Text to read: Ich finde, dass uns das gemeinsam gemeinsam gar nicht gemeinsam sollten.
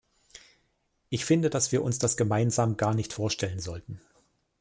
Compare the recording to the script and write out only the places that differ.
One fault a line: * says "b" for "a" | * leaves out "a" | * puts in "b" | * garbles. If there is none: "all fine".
* puts in "wir"
* leaves out "gemeinsam"
* says "vorstellen" for "gemeinsam"